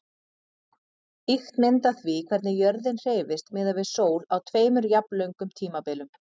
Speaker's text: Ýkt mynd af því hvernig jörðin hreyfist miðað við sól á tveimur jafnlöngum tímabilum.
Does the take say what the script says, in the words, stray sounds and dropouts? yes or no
yes